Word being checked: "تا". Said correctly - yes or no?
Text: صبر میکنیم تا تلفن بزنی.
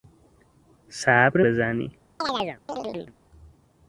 no